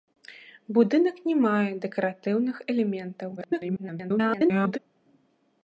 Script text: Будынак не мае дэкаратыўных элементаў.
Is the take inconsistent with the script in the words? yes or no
yes